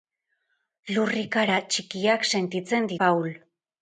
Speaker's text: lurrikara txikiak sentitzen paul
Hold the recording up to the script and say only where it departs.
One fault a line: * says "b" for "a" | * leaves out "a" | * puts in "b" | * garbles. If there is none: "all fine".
all fine